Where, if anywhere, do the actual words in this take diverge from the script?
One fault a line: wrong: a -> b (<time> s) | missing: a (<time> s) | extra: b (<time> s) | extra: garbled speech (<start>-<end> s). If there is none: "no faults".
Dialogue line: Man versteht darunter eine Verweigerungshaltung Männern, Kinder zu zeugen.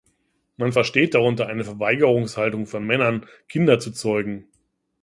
extra: von (2.7 s)